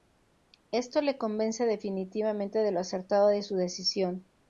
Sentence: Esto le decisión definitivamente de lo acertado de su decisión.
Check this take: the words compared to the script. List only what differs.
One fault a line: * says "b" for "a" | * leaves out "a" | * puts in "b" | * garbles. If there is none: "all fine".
* says "convence" for "decisión"